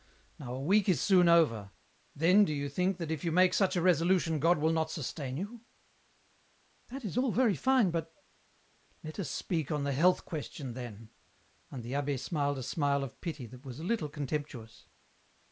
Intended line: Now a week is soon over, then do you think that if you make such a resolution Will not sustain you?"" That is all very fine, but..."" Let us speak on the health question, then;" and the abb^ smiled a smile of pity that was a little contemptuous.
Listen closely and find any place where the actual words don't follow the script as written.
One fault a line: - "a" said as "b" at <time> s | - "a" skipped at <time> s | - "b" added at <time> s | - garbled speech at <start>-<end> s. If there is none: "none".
- "God" added at 4.4 s